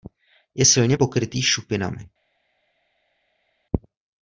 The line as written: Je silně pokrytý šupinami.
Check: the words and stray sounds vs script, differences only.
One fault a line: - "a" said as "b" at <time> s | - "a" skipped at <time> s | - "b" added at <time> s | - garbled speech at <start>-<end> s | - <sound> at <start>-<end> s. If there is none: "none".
none